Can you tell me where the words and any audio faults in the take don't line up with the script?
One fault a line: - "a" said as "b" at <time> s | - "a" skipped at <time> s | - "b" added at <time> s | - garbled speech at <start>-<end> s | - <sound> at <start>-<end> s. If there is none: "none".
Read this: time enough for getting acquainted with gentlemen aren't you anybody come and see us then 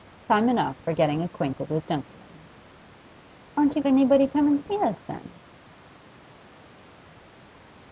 none